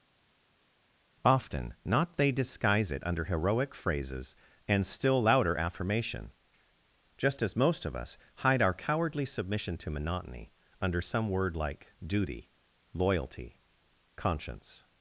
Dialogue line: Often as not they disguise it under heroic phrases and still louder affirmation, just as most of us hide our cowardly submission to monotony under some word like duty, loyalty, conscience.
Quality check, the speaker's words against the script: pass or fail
fail